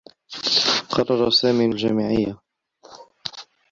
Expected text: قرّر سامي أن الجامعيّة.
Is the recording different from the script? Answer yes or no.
no